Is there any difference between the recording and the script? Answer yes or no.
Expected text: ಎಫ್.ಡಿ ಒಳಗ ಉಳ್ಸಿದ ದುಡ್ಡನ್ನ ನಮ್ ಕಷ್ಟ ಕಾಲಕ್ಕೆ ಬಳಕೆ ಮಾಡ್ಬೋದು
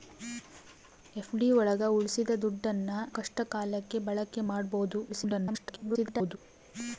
yes